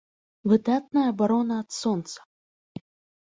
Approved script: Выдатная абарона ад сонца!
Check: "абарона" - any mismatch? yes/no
no